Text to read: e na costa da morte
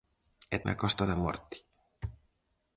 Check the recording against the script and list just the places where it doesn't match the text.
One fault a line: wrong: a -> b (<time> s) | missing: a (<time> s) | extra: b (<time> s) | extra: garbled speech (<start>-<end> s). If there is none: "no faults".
no faults